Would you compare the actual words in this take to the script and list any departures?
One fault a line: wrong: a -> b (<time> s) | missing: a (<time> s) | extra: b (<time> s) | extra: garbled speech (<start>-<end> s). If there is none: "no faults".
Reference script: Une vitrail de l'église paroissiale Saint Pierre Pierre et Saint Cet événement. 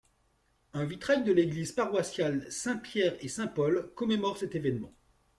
wrong: Une -> Un (0.7 s)
missing: Pierre (3.2 s)
extra: Paul commémore (3.5 s)